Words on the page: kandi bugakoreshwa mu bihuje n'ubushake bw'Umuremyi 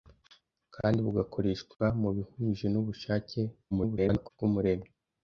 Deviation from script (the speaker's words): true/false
true